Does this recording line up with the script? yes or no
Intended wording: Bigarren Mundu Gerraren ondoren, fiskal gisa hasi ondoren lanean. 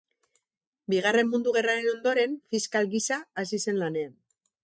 no